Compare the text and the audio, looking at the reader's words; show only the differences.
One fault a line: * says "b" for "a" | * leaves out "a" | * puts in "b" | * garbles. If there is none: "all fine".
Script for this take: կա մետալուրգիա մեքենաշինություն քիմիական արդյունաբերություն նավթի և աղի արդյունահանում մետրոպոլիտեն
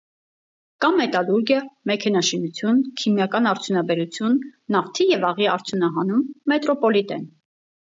all fine